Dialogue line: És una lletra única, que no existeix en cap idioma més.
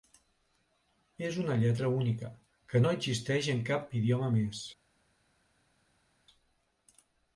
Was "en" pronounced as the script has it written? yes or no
yes